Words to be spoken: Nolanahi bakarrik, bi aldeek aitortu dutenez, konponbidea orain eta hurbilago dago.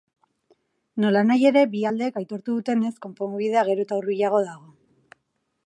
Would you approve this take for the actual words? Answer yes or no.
no